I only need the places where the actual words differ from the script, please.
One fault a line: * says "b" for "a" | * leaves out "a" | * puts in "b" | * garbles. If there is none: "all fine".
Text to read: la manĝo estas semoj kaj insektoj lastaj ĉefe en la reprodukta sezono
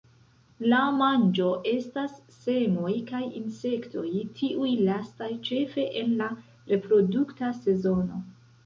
* puts in "tiuj"